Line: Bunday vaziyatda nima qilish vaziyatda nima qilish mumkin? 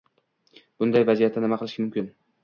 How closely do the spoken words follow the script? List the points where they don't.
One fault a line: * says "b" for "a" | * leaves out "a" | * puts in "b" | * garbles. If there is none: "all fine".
* leaves out "vaziyatda nima qilish"